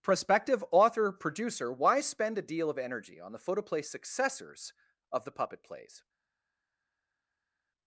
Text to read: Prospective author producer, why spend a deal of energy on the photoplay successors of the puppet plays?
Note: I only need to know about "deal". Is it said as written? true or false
true